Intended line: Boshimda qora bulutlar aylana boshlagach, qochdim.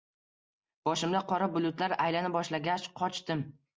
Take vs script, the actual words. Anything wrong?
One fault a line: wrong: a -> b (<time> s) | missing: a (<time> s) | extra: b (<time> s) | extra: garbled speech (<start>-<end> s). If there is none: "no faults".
no faults